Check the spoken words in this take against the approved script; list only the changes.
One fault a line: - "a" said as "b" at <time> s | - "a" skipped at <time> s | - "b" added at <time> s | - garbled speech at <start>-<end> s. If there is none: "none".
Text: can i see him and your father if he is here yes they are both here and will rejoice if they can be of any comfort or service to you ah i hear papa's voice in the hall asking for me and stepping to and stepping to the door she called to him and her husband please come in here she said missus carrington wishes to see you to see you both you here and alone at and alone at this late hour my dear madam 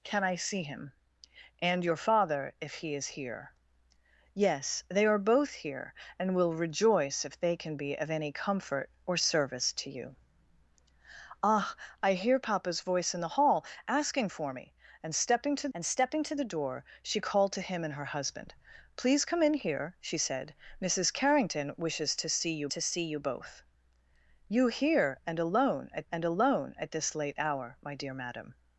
none